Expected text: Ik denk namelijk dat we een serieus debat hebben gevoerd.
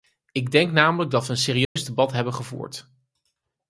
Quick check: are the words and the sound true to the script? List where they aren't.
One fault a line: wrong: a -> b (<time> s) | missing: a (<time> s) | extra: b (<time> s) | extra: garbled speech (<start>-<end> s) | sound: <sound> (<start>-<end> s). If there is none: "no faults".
sound: dropout (1.6-1.8 s)